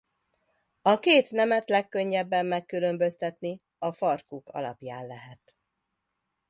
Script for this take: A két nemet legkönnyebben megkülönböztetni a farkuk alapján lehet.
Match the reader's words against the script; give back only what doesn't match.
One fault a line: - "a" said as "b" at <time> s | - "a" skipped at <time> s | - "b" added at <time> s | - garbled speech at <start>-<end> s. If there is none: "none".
none